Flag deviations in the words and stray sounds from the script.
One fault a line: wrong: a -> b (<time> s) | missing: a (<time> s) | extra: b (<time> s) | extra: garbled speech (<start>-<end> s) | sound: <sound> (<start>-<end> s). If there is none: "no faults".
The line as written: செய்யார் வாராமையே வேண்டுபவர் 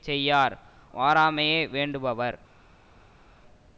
no faults